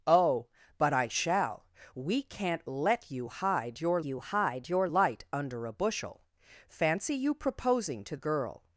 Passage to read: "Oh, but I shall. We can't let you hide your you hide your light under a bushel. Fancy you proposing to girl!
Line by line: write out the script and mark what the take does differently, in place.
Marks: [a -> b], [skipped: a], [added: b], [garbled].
"Oh, but I shall. We can't let you hide your you hide your light under a bushel. Fancy you proposing to girl!